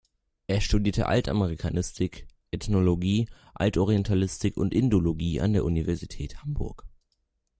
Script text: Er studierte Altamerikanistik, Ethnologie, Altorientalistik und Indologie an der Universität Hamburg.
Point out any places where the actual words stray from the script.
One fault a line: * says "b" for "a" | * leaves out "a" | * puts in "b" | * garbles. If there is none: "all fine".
all fine